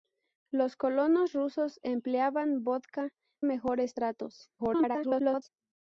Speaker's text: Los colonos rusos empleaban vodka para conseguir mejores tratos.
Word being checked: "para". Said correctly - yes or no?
no